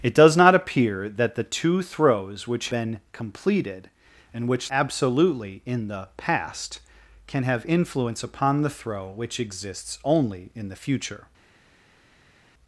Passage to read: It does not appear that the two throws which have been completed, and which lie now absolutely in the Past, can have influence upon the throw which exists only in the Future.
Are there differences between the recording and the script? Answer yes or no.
yes